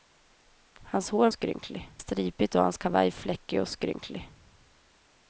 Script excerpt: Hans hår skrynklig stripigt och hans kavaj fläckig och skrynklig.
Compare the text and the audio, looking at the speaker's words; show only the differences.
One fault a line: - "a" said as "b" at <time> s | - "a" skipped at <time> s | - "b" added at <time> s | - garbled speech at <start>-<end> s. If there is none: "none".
none